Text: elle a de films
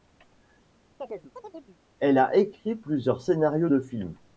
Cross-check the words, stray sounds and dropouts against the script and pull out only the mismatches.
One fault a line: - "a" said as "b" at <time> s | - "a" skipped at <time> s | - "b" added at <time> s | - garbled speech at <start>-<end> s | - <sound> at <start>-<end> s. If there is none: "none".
- chirp at 1.0-1.8 s
- "écrit plusieurs scénarios" added at 2.3 s